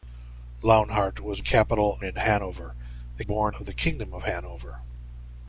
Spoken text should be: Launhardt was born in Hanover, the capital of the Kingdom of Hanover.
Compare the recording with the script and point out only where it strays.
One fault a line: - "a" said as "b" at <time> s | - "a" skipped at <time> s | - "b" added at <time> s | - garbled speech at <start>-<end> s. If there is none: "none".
- "born" said as "capital" at 1.4 s
- "capital" said as "born" at 3.2 s